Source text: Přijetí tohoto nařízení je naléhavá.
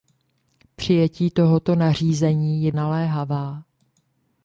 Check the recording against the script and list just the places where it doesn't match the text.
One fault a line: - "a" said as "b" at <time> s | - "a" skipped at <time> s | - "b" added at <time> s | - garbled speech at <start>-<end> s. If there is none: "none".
none